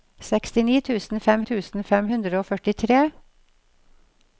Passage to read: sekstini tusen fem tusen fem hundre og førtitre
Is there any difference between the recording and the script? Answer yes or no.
no